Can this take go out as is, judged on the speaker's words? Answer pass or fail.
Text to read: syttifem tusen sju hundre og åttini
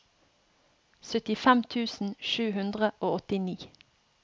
pass